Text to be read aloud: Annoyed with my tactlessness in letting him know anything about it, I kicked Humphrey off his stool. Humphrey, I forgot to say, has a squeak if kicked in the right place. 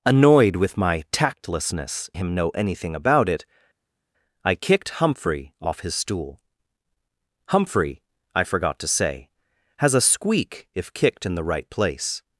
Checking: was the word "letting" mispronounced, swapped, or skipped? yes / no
yes